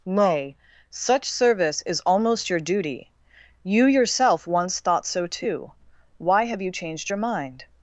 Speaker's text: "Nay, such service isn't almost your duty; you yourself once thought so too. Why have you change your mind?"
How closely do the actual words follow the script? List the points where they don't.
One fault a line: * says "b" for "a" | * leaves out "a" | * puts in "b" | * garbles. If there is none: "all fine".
* says "is" for "isn't"
* says "changed" for "change"